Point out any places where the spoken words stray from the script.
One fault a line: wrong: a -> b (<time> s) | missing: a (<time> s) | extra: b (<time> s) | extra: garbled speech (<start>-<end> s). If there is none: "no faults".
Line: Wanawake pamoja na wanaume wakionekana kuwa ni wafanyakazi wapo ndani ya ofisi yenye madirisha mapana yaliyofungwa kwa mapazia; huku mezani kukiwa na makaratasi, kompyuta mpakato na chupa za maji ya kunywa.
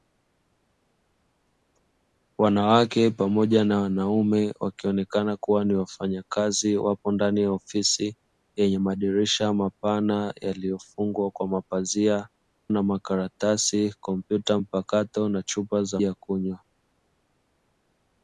missing: huku mezani kukiwa (12.3 s)
missing: maji (16.0 s)